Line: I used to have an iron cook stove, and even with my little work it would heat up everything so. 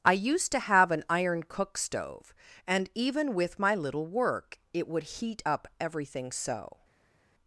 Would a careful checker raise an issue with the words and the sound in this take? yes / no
no